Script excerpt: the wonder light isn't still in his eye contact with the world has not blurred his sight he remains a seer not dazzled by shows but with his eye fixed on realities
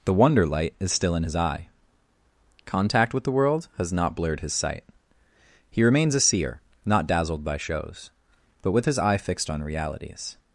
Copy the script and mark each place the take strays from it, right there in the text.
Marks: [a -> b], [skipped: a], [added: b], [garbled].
the wonder light [isn't -> is] still in his eye contact with the world has not blurred his sight he remains a seer not dazzled by shows but with his eye fixed on realities